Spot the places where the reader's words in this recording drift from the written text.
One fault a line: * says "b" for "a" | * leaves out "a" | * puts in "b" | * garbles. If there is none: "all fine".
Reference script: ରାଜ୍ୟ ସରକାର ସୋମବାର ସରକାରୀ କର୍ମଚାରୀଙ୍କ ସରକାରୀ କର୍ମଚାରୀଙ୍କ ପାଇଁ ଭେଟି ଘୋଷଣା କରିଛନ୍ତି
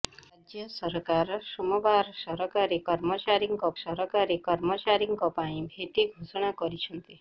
all fine